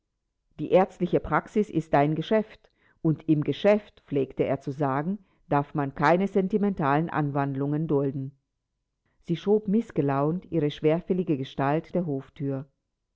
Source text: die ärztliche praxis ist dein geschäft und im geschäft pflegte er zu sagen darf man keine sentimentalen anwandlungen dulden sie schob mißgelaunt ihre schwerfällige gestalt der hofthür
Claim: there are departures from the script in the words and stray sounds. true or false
false